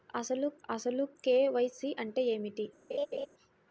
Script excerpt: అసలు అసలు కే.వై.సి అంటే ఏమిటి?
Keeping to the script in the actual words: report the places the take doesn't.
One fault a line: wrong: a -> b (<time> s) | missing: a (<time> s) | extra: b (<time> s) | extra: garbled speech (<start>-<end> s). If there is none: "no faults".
no faults